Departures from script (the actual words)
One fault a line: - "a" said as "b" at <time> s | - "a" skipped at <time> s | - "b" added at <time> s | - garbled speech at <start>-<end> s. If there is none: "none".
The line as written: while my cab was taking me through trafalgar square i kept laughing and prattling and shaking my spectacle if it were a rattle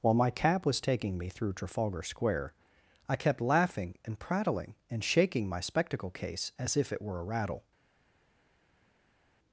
- "case as" added at 6.1 s